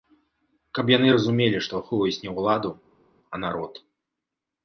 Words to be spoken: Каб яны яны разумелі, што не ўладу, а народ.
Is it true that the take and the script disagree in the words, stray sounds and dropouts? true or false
true